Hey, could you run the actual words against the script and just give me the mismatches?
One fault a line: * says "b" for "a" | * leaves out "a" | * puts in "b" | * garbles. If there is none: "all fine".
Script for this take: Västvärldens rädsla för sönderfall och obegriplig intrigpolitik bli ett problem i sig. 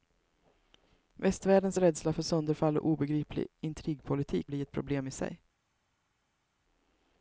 all fine